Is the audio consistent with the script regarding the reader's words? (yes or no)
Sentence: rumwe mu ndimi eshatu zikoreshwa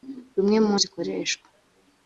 no